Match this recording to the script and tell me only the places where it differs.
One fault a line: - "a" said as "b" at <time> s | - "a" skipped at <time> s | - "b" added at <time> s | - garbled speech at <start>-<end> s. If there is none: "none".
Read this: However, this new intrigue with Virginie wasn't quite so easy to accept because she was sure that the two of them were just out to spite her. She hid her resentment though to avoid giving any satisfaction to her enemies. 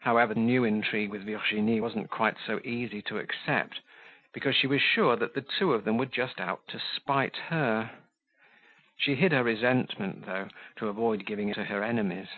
- "this" skipped at 0.3 s
- "any satisfaction" skipped at 11.5 s